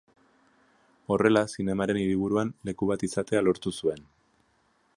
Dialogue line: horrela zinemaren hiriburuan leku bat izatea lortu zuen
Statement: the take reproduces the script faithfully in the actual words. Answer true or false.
true